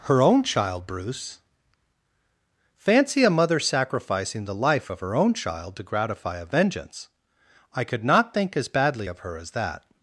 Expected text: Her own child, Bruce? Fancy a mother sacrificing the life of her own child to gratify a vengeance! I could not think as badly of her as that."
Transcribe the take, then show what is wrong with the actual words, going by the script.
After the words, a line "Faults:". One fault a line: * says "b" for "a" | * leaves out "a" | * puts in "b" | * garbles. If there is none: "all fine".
Her own child, Bruce? Fancy a mother sacrificing the life of her own child to gratify a vengeance! I could not think as badly of her as that."
Faults:
all fine